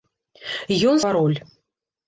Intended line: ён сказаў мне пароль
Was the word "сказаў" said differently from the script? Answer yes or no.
yes